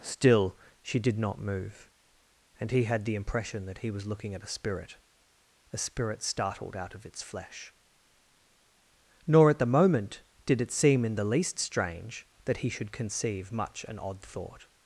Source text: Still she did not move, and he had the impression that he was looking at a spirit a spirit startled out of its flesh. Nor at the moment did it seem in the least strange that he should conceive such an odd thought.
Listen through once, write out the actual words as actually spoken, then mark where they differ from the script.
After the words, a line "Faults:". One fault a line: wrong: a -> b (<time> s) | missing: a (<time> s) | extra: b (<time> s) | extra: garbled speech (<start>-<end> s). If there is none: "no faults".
Still she did not move, and he had the impression that he was looking at a spirit a spirit startled out of its flesh. Nor at the moment did it seem in the least strange that he should conceive much an odd thought.
Faults:
wrong: such -> much (13.5 s)